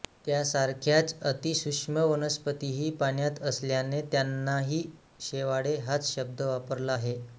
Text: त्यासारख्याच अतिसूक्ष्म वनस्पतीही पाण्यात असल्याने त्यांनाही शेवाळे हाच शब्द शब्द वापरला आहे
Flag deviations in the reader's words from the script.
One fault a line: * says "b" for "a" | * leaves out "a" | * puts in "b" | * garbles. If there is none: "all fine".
* leaves out "शब्द"